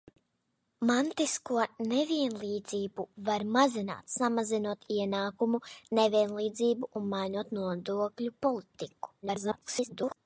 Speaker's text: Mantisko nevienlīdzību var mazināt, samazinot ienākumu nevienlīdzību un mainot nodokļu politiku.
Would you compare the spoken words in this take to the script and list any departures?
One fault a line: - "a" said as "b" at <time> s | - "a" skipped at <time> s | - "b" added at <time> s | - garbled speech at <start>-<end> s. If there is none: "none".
- garbled speech at 9.2-10.2 s